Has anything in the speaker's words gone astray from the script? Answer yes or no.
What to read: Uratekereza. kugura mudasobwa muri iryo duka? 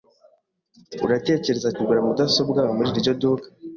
no